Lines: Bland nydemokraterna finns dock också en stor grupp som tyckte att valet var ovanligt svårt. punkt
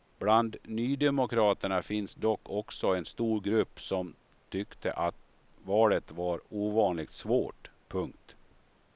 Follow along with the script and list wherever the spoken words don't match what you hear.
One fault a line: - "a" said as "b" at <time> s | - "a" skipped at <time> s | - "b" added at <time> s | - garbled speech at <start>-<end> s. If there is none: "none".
none